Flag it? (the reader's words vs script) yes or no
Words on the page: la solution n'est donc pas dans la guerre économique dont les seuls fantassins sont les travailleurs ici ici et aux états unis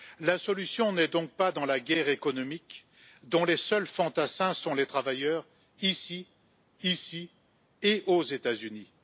no